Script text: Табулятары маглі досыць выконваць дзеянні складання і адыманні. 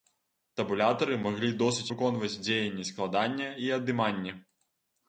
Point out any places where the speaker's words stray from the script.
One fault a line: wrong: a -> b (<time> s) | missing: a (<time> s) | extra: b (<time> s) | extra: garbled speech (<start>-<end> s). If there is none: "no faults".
no faults